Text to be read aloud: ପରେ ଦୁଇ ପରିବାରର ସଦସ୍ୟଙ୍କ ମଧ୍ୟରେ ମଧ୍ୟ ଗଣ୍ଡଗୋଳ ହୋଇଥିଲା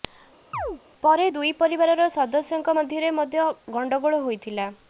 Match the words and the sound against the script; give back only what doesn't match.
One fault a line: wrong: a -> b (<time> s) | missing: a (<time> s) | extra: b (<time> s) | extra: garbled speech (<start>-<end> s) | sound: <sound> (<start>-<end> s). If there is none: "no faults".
sound: chirp (0.5-0.8 s)